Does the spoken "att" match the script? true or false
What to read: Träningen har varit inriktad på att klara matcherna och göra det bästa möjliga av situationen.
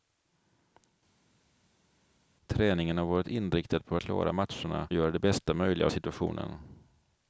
false